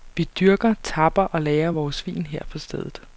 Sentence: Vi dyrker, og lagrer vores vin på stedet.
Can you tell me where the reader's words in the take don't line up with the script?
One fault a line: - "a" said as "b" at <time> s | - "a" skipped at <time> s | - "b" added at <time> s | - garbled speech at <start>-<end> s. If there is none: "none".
- "tapper" added at 0.8 s
- "her" added at 2.3 s